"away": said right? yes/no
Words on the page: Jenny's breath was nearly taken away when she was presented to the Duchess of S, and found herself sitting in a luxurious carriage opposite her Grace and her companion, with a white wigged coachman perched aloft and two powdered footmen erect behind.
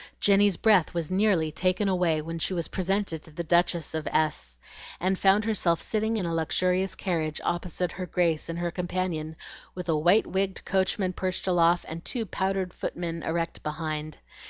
yes